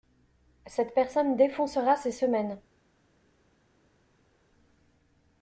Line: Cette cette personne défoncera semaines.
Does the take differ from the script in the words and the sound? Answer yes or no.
yes